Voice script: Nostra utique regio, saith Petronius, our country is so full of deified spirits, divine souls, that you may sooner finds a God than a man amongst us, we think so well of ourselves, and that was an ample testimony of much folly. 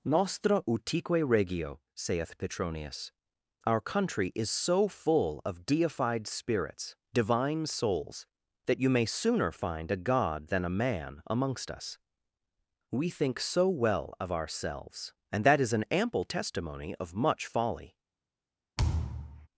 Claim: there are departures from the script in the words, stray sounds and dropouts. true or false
true